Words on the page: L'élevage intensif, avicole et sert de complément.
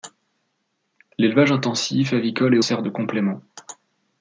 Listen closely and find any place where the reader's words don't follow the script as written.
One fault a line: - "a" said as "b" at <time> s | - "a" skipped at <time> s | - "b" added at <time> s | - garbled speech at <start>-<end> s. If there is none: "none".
none